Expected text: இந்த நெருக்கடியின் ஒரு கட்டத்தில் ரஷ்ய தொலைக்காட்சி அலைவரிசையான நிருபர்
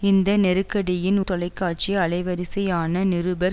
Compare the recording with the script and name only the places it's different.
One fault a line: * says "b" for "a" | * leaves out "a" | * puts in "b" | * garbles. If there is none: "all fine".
* leaves out "ஒரு கட்டத்தில் ரஷ்ய"